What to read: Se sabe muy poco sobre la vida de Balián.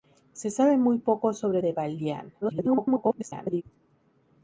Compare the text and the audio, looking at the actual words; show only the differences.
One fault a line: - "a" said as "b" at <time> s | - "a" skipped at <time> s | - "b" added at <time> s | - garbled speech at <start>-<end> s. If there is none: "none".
- "la vida" skipped at 1.6 s
- garbled speech at 2.4-3.6 s